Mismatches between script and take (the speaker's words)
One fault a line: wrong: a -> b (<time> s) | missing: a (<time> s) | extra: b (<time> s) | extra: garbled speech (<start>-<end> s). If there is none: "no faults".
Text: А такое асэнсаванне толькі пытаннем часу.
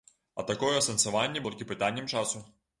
no faults